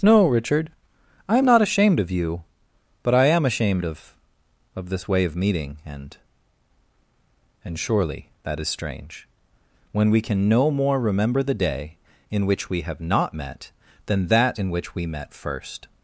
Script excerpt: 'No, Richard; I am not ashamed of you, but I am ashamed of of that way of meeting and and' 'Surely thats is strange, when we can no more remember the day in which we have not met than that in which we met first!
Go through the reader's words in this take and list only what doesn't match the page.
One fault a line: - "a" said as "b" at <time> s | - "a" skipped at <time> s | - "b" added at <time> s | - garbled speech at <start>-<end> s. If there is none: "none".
- "that" said as "this" at 4.9 s
- "thats" said as "that" at 8.4 s